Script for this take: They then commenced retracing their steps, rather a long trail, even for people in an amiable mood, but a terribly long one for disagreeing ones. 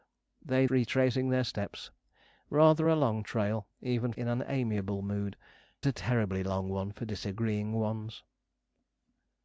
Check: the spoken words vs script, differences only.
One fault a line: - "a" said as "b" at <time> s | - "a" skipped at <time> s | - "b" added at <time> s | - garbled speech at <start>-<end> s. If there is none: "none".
- "then commenced" skipped at 0.7 s
- "for people" skipped at 4.1 s
- "but" skipped at 5.4 s